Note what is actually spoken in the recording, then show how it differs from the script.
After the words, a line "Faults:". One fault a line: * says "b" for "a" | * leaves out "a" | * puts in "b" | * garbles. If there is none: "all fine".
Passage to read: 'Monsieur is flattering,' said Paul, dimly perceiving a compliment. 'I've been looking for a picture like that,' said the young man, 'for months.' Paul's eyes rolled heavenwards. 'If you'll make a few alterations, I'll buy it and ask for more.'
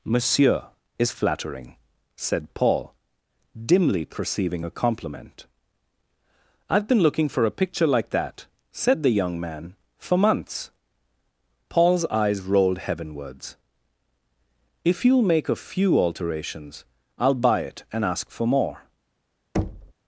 'Monsieur is flattering,' said Paul, dimly perceiving a compliment. 'I've been looking for a picture like that,' said the young man, 'for months.' Paul's eyes rolled heavenwards. 'If you'll make a few alterations, I'll buy it and ask for more.'
Faults:
all fine